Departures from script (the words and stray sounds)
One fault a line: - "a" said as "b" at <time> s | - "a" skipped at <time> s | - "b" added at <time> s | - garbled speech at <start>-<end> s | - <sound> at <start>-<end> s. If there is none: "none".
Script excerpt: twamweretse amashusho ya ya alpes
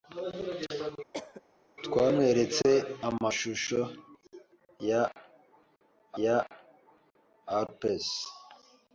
- cough at 1.1-1.4 s